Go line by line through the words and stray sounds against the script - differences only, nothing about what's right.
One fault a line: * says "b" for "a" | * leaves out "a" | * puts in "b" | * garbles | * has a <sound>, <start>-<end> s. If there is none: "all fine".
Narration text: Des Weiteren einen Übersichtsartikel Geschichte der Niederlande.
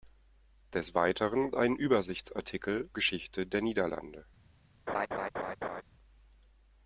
* has a laugh, 4.9-5.8 s